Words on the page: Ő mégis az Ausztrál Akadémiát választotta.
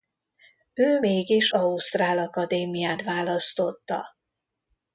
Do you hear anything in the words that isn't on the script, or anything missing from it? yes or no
yes